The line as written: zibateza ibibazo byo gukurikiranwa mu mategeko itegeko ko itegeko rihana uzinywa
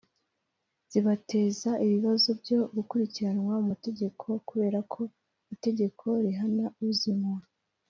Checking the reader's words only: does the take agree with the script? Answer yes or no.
no